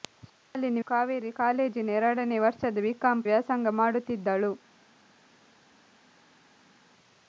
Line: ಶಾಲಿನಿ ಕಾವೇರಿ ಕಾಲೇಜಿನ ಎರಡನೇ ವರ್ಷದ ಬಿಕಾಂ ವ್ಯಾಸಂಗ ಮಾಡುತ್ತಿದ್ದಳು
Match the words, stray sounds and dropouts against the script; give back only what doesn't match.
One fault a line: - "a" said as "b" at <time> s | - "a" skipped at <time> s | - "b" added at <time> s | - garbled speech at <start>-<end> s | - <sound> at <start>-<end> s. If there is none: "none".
none